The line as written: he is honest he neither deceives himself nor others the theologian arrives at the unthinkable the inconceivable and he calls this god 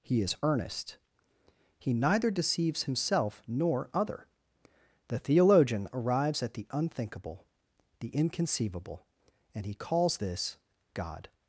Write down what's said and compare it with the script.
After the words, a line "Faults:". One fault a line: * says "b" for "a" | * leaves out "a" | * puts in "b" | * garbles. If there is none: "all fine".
he is earnest he neither deceives himself nor other the theologian arrives at the unthinkable the inconceivable and he calls this god
Faults:
* says "earnest" for "honest"
* says "other" for "others"